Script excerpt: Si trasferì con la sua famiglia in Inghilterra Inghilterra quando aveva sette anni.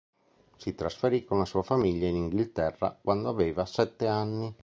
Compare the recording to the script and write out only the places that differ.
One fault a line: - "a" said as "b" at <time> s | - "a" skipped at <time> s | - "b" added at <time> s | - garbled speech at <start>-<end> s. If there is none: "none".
- "Inghilterra" skipped at 3.0 s